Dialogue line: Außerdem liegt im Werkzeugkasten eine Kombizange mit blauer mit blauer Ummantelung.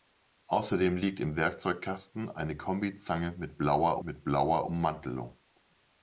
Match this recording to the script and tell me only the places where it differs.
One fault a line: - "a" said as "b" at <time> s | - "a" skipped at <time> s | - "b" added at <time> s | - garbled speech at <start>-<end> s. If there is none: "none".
none